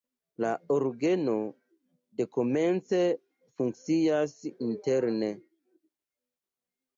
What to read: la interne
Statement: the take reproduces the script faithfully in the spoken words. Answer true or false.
false